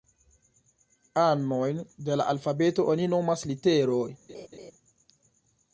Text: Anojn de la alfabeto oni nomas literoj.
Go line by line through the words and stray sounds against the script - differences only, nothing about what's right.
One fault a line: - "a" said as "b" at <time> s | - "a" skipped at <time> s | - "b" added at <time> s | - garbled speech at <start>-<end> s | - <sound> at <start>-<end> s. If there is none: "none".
- laugh at 4.3-4.7 s